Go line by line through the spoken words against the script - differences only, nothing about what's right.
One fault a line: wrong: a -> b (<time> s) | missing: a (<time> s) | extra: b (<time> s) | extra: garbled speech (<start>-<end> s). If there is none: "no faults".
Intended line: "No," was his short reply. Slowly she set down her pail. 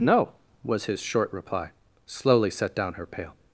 missing: she (2.5 s)